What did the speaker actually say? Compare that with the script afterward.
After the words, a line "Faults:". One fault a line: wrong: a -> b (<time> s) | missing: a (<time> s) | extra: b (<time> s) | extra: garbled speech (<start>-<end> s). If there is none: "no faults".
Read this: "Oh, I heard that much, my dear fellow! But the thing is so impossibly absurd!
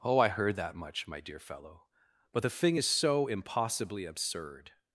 "Oh, I heard that much, my dear fellow! But the thing is so impossibly absurd!
Faults:
no faults